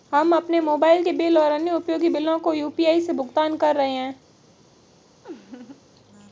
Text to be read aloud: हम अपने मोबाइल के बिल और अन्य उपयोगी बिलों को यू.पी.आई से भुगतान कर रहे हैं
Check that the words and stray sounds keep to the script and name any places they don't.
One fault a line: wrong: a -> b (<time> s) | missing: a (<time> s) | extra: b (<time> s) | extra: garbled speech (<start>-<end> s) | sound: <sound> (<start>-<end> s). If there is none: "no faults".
sound: laugh (5.2-5.8 s)